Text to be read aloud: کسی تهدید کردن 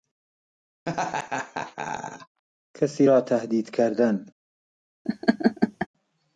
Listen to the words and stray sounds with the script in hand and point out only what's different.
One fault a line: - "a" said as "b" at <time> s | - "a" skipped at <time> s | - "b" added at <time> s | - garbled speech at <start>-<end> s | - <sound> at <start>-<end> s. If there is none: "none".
- laugh at 0.9-2.4 s
- "را" added at 3.0 s
- laugh at 5.1-5.9 s